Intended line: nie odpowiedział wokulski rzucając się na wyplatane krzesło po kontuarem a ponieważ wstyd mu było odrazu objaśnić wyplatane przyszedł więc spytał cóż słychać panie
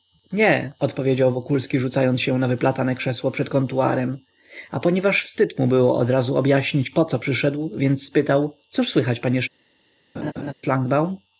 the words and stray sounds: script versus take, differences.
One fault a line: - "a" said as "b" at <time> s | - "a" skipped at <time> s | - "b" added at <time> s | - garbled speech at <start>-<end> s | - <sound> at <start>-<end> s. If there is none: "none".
- "po" said as "przed" at 3.3 s
- "wyplatane" said as "poco" at 6.9 s
- laugh at 10.1-10.5 s